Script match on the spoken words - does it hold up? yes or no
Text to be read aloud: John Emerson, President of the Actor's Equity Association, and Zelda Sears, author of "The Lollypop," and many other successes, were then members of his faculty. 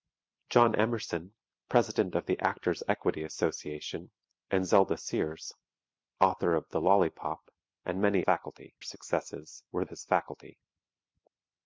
no